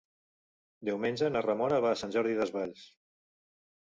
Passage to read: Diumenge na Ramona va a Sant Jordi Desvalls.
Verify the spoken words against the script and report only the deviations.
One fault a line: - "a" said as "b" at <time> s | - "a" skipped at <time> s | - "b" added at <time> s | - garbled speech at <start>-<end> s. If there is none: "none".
none